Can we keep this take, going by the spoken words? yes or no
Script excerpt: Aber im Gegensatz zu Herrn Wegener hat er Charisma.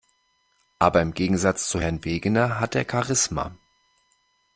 yes